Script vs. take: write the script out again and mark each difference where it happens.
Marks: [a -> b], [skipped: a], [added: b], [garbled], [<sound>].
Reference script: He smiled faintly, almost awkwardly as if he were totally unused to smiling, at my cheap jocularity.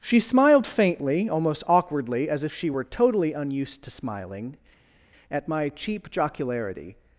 [He -> She] smiled faintly, almost awkwardly as if [he -> she] were totally unused to smiling, at my cheap jocularity.